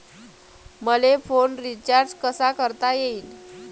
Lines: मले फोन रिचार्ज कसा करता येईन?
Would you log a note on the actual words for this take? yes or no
no